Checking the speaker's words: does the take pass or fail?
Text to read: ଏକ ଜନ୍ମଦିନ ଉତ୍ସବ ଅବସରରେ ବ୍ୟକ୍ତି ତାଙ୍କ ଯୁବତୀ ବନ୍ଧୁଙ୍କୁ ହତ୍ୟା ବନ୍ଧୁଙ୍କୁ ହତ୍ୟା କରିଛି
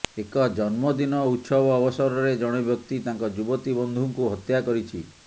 fail